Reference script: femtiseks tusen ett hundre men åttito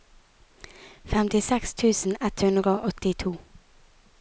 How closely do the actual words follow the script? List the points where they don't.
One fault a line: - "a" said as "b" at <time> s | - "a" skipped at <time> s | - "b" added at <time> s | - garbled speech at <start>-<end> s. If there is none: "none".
- "men" said as "og" at 2.8 s